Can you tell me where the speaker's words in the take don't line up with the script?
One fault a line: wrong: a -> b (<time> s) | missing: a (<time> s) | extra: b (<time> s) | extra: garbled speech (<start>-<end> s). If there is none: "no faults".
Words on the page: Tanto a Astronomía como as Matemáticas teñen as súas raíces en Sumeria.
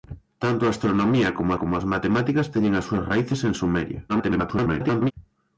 extra: como (1.6 s)
extra: garbled speech (4.1-5.1 s)